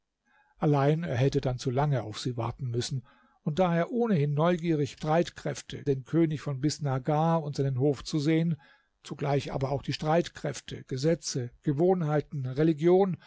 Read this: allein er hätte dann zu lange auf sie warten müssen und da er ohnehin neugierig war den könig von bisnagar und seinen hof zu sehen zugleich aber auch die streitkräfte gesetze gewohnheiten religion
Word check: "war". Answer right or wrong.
wrong